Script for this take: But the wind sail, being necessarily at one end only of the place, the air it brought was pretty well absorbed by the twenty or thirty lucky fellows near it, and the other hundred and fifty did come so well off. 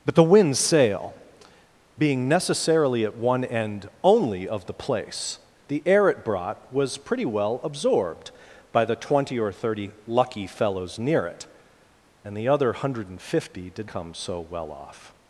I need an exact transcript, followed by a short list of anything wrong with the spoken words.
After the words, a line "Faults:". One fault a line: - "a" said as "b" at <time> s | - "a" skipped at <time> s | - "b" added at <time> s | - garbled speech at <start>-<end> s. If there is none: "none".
But the wind sail, being necessarily at one end only of the place, the air it brought was pretty well absorbed by the twenty or thirty lucky fellows near it, and the other hundred and fifty did come so well off.
Faults:
none